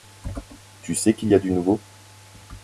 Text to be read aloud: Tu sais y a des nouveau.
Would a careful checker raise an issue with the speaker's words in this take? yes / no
yes